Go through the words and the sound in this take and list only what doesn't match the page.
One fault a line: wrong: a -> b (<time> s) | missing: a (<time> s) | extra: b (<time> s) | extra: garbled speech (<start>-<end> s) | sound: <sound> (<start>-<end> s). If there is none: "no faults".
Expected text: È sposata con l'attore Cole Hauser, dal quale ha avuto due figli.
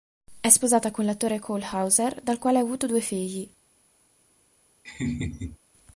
sound: laugh (4.8-5.6 s)